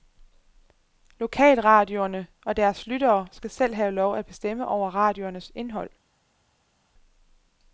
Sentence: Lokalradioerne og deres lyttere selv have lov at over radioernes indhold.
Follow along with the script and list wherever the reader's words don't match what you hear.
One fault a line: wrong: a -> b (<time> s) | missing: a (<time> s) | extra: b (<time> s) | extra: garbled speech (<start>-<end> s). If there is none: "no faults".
extra: skal (3.3 s)
extra: bestemme (4.2 s)